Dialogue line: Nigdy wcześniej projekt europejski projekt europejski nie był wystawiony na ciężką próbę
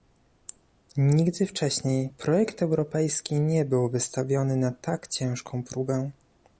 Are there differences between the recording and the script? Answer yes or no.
yes